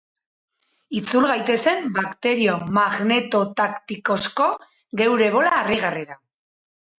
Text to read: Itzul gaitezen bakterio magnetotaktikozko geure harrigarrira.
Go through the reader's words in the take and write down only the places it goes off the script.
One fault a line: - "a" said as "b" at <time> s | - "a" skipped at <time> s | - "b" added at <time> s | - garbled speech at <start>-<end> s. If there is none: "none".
- "bola" added at 5.4 s